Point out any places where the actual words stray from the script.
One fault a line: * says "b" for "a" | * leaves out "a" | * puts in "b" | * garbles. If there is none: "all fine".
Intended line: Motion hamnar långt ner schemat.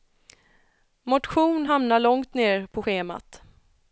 * puts in "på"